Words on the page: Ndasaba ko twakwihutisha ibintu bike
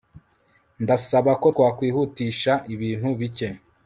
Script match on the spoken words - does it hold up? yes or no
yes